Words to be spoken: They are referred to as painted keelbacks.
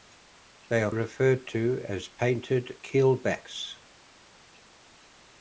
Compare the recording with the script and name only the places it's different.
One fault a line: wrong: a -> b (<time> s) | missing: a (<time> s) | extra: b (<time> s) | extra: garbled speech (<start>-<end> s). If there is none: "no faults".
no faults